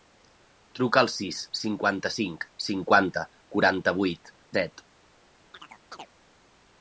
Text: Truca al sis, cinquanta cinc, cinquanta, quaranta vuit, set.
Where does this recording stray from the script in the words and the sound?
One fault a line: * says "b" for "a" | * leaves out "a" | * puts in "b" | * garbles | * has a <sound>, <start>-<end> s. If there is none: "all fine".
* has a chirp, 5.5-6.1 s